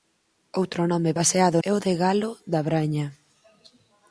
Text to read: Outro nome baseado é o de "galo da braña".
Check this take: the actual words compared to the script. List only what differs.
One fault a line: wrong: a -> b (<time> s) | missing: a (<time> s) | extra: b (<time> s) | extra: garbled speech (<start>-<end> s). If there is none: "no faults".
no faults